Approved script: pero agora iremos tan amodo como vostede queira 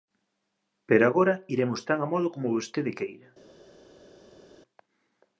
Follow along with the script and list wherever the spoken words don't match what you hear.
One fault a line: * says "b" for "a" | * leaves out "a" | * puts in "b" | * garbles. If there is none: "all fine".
all fine